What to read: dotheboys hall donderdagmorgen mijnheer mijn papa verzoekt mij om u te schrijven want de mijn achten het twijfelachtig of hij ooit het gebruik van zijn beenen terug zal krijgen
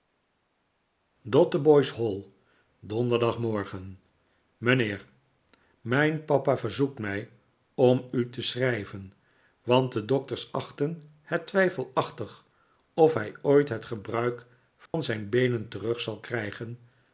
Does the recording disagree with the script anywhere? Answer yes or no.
yes